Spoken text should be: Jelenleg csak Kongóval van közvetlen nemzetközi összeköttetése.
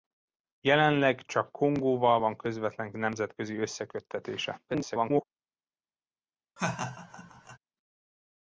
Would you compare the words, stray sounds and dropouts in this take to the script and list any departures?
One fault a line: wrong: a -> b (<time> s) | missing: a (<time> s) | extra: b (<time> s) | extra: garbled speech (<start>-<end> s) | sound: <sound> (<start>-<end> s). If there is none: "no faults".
extra: garbled speech (4.7-5.2 s)
sound: laugh (6.6-7.6 s)